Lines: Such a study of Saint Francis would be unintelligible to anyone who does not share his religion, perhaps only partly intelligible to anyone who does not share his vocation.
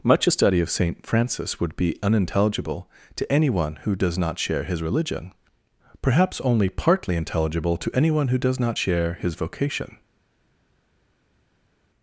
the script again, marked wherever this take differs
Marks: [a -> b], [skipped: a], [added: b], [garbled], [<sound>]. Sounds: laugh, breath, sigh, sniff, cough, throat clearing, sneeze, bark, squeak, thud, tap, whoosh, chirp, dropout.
[Such -> Much] a study of Saint Francis would be unintelligible to anyone who does not share his religion, perhaps only partly intelligible to anyone who does not share his vocation.